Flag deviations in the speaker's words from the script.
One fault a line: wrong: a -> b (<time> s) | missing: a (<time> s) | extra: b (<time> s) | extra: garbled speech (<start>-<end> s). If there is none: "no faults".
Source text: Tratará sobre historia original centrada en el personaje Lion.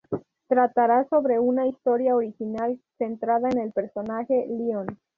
extra: una (1.4 s)